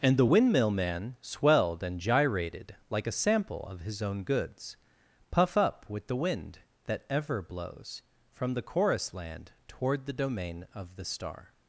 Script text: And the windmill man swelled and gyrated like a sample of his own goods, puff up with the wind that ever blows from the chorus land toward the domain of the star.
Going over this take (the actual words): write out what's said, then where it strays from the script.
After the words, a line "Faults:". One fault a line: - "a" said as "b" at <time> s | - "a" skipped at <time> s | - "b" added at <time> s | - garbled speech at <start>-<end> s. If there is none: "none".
And the windmill man swelled and gyrated like a sample of his own goods, puff up with the wind that ever blows from the chorus land toward the domain of the star.
Faults:
none